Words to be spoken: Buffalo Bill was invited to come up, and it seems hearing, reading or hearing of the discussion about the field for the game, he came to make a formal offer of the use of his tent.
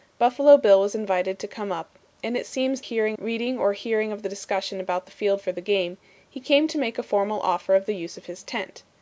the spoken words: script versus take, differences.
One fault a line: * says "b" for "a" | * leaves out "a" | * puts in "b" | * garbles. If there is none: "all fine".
all fine